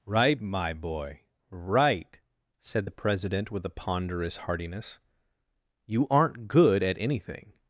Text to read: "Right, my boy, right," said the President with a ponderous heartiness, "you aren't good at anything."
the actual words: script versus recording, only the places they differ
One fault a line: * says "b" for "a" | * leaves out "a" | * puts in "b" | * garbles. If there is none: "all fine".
all fine